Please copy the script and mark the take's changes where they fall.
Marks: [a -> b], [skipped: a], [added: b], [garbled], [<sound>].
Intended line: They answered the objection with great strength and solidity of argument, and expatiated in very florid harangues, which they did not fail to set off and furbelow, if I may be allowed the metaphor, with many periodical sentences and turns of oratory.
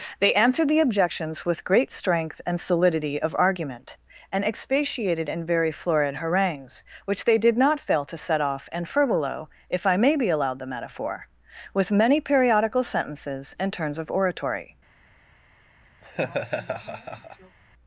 They answered the [objection -> objections] with great strength and solidity of argument, and expatiated in very florid harangues, which they did not fail to set off and furbelow, if I may be allowed the metaphor, with many periodical sentences and turns of oratory. [laugh]